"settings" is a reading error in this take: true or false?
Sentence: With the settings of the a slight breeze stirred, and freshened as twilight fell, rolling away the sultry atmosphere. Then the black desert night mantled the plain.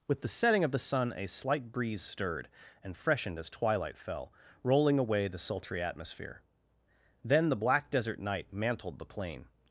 true